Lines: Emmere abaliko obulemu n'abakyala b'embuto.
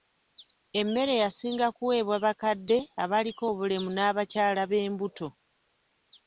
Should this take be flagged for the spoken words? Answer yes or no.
yes